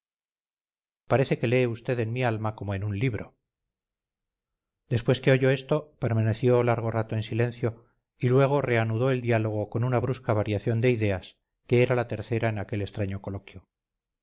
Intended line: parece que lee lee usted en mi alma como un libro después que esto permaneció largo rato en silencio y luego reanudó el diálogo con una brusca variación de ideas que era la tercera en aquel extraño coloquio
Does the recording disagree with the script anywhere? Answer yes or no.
yes